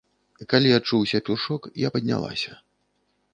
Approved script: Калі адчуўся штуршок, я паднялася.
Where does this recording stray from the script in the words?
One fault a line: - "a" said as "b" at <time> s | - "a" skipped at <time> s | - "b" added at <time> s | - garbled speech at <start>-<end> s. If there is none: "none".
none